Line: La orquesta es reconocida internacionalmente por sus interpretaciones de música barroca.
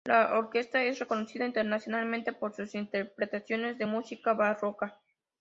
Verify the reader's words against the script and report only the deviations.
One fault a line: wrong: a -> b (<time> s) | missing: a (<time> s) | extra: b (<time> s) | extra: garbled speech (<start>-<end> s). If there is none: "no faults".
no faults